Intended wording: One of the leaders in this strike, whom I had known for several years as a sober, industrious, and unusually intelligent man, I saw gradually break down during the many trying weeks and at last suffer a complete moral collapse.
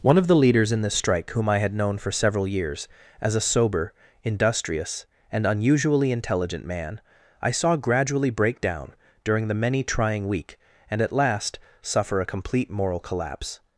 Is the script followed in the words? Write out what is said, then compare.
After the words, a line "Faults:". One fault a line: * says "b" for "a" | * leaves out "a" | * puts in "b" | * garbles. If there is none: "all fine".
One of the leaders in this strike, whom I had known for several years as a sober, industrious, and unusually intelligent man, I saw gradually break down during the many trying week and at last suffer a complete moral collapse.
Faults:
* says "week" for "weeks"